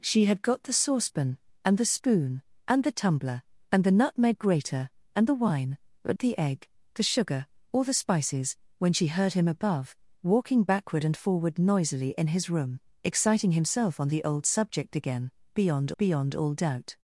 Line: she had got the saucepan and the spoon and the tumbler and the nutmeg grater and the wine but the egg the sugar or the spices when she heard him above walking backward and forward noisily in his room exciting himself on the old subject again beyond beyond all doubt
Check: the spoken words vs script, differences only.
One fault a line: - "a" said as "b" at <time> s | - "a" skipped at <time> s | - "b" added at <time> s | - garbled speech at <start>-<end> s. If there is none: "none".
none